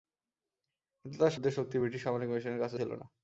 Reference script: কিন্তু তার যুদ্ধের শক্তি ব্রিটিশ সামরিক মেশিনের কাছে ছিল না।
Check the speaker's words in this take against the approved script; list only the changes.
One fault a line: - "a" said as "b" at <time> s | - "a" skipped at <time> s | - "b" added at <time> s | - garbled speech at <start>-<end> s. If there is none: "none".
none